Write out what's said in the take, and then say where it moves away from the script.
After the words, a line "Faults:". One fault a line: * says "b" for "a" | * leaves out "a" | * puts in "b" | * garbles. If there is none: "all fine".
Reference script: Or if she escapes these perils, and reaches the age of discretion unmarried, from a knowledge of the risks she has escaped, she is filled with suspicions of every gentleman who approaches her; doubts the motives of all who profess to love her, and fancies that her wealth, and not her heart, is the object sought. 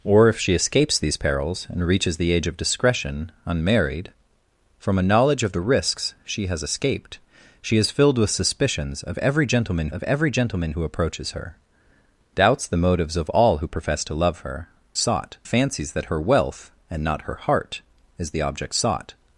Or if she escapes these perils, and reaches the age of discretion unmarried, from a knowledge of the risks she has escaped, she is filled with suspicions of every gentleman of every gentleman who approaches her; doubts the motives of all who profess to love her, sought fancies that her wealth, and not her heart, is the object sought.
Faults:
* puts in "of every gentleman"
* says "sought" for "and"